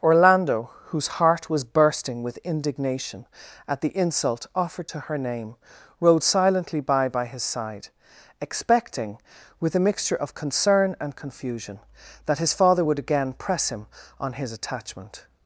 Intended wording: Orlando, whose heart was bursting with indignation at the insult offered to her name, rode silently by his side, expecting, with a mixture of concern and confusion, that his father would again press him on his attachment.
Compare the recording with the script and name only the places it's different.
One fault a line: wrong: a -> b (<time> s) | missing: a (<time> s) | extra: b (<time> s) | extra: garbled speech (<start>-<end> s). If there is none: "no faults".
extra: by (7.1 s)